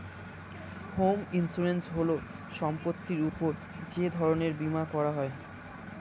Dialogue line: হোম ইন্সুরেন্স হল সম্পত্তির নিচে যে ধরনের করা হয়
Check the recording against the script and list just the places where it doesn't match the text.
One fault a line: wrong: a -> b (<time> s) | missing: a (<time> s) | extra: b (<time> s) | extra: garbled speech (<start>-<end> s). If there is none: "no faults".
wrong: নিচে -> উপর (3.3 s)
extra: বীমা (4.6 s)